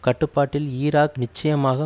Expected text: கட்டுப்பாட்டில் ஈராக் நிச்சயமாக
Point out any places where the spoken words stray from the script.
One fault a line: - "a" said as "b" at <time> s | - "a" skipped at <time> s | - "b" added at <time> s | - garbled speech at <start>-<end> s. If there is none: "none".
none